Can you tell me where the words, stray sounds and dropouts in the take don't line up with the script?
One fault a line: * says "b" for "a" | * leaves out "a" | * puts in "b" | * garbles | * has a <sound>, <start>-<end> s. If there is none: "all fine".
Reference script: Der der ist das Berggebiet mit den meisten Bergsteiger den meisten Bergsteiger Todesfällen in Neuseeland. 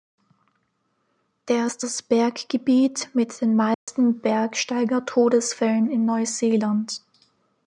* leaves out "der"
* has a dropout, 3.7-3.9 s
* leaves out "den meisten Bergsteiger"